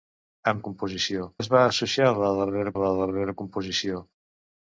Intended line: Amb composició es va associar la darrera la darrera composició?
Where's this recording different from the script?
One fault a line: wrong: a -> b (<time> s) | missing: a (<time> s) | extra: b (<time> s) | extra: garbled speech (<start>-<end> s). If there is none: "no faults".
no faults